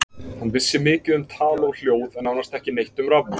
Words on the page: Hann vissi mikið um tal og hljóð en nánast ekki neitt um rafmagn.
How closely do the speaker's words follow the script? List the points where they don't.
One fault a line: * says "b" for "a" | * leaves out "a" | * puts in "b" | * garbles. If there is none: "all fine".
all fine